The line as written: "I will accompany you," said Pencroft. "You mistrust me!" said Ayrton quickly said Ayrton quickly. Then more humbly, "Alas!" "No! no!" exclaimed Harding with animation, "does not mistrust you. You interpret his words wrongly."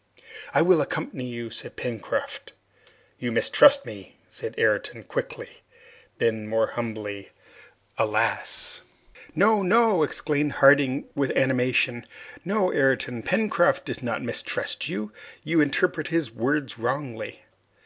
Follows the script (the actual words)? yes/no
no